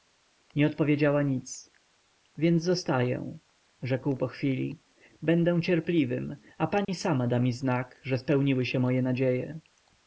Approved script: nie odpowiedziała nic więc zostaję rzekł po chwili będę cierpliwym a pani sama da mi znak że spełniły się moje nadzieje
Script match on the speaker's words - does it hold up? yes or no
yes